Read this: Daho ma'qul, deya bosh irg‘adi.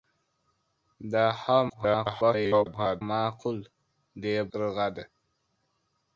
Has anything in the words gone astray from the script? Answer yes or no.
yes